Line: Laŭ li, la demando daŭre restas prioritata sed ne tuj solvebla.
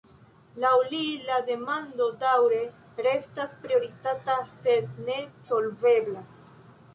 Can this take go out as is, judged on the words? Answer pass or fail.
fail